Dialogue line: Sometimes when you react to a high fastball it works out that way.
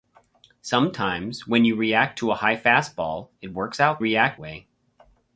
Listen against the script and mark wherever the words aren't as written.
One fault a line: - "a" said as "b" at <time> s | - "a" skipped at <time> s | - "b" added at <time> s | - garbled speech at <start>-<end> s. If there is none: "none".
- "that" said as "react" at 4.0 s